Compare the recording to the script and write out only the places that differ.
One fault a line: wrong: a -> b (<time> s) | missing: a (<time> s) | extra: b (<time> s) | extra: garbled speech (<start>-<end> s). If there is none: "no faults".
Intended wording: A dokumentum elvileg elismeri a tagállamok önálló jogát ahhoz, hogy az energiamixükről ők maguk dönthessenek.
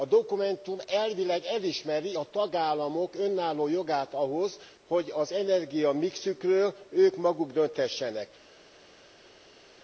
no faults